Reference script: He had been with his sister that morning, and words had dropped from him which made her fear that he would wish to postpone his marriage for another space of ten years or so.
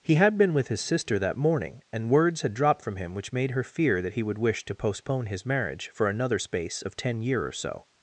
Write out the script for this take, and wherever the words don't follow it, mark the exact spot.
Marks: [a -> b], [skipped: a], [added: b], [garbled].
He had been with his sister that morning, and words had dropped from him which made her fear that he would wish to postpone his marriage for another space of ten [years -> year] or so.